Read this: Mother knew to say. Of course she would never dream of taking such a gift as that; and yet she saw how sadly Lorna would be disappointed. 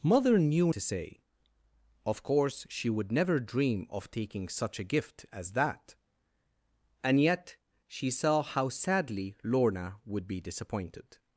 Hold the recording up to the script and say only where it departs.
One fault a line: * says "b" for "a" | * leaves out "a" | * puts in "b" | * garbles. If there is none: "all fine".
all fine